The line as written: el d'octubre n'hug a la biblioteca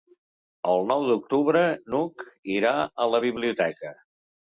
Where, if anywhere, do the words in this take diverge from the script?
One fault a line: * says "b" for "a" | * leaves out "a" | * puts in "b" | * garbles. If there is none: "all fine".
* puts in "nou"
* puts in "irà"